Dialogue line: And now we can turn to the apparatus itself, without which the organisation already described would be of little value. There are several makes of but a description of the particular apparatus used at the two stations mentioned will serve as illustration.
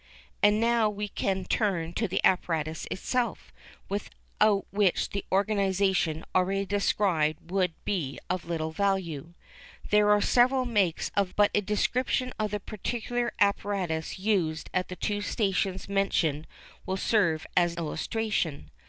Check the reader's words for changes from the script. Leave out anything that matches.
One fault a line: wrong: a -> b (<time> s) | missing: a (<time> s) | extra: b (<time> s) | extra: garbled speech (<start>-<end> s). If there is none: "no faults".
no faults